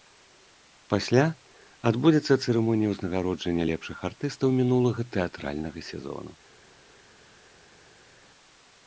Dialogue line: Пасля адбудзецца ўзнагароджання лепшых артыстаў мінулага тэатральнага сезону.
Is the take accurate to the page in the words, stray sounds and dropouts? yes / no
no